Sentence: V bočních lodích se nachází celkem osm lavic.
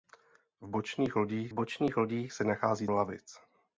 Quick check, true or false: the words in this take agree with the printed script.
false